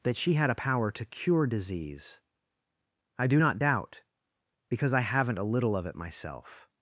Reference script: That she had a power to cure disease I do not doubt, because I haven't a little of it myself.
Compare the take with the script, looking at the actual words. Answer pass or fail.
pass